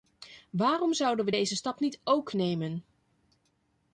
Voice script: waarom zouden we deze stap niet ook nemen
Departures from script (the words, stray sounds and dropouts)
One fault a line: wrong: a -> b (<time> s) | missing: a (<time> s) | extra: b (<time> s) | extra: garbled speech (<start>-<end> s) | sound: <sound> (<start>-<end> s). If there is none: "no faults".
no faults